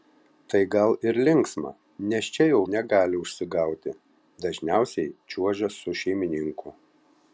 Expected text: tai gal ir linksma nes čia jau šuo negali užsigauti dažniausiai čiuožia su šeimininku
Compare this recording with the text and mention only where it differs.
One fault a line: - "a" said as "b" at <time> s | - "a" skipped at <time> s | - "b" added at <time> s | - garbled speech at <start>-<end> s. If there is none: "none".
- "šuo" skipped at 2.6 s